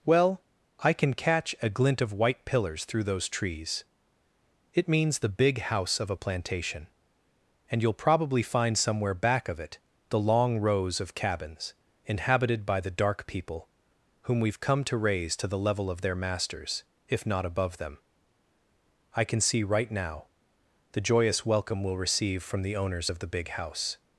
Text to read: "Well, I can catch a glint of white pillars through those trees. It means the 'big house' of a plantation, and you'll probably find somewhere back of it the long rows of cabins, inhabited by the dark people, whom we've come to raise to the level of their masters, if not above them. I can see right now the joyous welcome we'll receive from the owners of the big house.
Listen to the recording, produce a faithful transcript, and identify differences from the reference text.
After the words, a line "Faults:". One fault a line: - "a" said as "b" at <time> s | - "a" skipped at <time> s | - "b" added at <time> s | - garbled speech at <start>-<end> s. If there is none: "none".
"Well, I can catch a glint of white pillars through those trees. It means the 'big house' of a plantation, and you'll probably find somewhere back of it the long rows of cabins, inhabited by the dark people, whom we've come to raise to the level of their masters, if not above them. I can see right now the joyous welcome we'll receive from the owners of the big house.
Faults:
none